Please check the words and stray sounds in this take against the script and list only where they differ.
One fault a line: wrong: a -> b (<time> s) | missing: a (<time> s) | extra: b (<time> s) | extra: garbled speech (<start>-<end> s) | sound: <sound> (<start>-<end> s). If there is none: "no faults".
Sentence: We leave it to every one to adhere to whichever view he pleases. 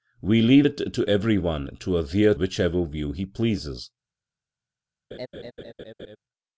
missing: to (2.3 s)
sound: laugh (5.1-6.2 s)